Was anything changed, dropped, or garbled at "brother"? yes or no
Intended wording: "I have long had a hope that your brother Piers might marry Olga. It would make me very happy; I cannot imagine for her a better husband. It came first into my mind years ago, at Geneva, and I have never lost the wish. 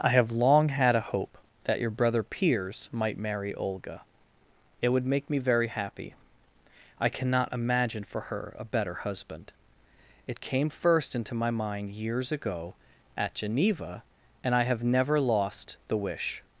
no